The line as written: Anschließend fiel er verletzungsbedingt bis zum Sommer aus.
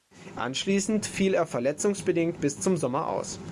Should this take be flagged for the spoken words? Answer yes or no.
no